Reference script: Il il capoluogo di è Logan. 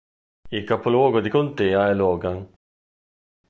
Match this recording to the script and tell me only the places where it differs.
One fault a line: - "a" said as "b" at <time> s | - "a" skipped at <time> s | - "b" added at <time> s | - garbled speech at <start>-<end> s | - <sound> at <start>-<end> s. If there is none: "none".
- "il" skipped at 0.6 s
- "contea" added at 1.3 s